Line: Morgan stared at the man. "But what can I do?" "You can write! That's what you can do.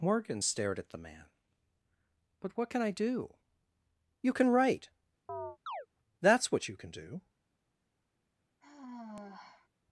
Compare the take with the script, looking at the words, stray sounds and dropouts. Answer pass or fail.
fail